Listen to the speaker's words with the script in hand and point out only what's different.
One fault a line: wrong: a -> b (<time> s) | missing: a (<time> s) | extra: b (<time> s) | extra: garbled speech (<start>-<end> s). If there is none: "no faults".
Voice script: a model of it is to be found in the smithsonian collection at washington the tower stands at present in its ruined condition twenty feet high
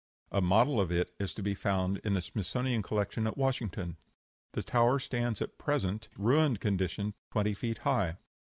missing: in its (6.1 s)